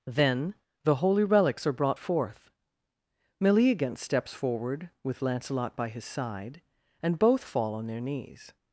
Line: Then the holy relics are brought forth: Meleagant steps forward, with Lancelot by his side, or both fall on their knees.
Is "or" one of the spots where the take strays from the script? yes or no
yes